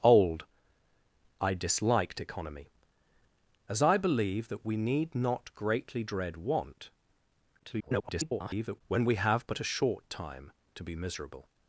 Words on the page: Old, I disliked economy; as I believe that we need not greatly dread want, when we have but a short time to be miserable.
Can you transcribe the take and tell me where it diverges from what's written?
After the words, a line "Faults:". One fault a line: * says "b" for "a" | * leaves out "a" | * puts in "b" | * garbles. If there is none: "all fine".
Old, I disliked economy; as I believe that we need not greatly dread want, [garbled] when we have but a short time to be miserable.
Faults:
* garbles